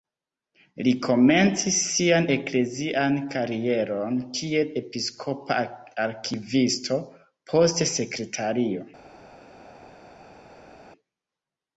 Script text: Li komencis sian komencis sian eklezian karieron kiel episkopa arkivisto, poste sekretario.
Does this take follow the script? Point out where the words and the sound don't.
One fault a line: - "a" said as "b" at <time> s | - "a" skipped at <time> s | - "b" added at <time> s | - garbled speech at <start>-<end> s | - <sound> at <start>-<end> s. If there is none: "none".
- "komencis sian" skipped at 2.3 s